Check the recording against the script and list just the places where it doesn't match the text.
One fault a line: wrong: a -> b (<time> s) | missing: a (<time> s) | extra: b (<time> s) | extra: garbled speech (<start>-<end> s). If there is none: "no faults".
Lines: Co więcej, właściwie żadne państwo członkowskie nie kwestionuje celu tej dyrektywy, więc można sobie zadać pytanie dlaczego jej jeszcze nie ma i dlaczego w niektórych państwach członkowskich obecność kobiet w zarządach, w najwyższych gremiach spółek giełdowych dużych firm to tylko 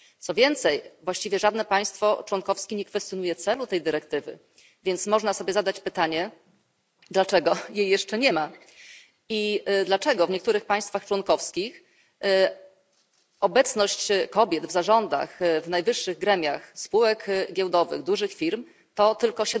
no faults